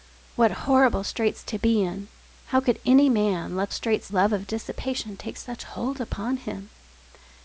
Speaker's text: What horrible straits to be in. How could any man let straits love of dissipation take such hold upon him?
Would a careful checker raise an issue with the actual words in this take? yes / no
no